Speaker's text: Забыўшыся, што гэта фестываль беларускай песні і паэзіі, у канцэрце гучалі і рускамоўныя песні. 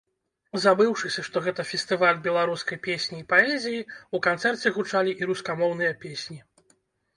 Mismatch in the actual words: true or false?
false